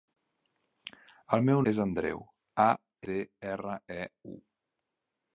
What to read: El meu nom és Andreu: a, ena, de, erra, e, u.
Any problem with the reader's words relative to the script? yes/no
yes